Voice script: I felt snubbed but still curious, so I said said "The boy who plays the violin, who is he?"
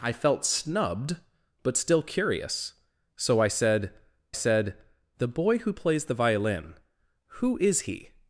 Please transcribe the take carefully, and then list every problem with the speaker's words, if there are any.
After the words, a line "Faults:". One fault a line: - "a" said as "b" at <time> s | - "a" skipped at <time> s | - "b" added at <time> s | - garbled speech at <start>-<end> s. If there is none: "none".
I felt snubbed but still curious, so I said said "The boy who plays the violin, who is he?"
Faults:
none